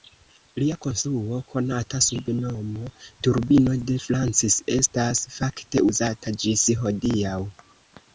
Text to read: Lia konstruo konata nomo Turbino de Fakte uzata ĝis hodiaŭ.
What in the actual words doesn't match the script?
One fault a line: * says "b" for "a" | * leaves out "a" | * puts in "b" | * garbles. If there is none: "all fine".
* puts in "sub"
* puts in "Francis estas"